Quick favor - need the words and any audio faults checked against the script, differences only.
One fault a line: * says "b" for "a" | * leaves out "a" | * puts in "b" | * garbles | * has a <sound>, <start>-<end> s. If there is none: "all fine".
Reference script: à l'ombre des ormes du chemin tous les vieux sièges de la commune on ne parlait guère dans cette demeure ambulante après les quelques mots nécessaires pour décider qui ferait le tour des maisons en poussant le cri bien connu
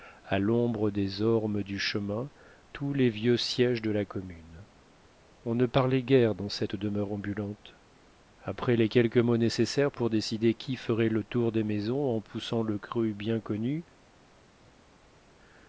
all fine